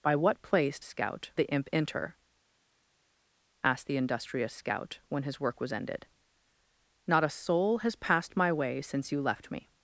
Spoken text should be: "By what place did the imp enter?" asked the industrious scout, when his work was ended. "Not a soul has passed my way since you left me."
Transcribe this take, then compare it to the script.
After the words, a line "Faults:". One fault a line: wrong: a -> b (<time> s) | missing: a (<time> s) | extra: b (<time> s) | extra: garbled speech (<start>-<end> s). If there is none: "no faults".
"By what place scout the imp enter?" asked the industrious scout, when his work was ended. "Not a soul has passed my way since you left me."
Faults:
wrong: did -> scout (0.8 s)